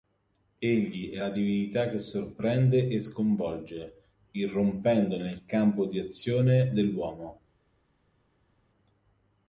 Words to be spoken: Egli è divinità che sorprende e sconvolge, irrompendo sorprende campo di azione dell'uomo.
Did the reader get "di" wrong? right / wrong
right